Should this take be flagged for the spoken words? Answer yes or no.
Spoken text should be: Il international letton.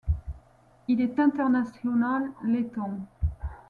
yes